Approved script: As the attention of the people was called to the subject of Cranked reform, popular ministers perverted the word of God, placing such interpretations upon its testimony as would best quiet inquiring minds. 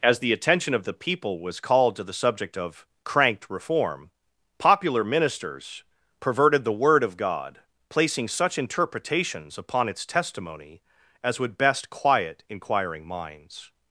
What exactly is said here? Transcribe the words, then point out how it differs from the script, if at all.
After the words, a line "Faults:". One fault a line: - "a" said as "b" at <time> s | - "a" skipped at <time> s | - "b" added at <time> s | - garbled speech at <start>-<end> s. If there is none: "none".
As the attention of the people was called to the subject of Cranked reform, popular ministers perverted the word of God, placing such interpretations upon its testimony as would best quiet inquiring minds.
Faults:
none